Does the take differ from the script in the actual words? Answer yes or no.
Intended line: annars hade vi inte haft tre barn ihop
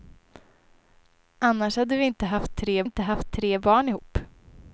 yes